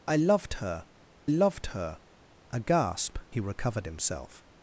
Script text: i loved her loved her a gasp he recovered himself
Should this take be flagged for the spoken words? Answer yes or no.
no